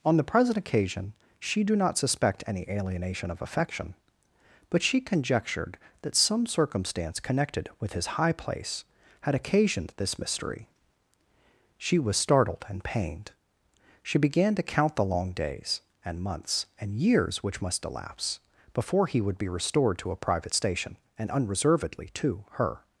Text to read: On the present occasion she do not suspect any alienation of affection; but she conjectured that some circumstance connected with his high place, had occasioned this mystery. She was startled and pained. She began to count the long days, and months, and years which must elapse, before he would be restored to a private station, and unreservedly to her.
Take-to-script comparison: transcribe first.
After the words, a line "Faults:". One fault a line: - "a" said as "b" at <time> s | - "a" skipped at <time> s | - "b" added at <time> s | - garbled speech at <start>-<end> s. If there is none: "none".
On the present occasion she do not suspect any alienation of affection; but she conjectured that some circumstance connected with his high place, had occasioned this mystery. She was startled and pained. She began to count the long days, and months, and years which must elapse, before he would be restored to a private station, and unreservedly to her.
Faults:
none